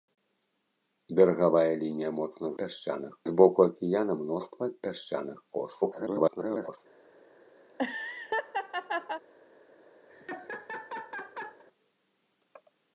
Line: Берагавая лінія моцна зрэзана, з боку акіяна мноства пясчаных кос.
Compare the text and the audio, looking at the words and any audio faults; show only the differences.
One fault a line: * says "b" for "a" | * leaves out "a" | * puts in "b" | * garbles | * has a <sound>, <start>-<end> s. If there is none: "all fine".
* says "пясчаных" for "зрэзана"
* garbles
* has a laugh, 7.7-9.2 s
* has a laugh, 10.1-11.6 s